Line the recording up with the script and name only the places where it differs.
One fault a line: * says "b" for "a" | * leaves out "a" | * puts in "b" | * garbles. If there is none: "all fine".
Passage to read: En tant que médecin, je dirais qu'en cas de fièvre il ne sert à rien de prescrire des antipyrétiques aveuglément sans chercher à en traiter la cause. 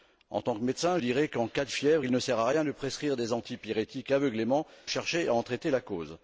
* leaves out "je"
* leaves out "sans"